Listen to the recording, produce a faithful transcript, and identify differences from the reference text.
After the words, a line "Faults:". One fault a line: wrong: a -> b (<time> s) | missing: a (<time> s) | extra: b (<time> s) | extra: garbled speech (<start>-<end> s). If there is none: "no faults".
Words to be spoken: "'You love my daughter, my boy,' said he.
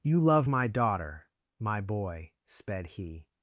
"'You love my daughter, my boy,' sped he.
Faults:
wrong: said -> sped (2.4 s)